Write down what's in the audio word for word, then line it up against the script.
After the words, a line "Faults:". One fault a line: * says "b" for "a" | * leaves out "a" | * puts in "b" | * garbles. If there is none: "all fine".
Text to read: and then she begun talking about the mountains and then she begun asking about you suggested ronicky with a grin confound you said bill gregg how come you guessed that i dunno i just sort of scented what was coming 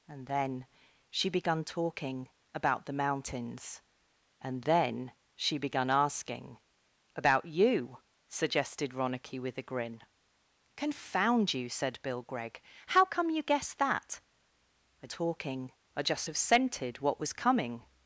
and then she begun talking about the mountains and then she begun asking about you suggested ronicky with a grin confound you said bill gregg how come you guessed that i talking i just of scented what was coming
Faults:
* says "talking" for "dunno"
* leaves out "sort"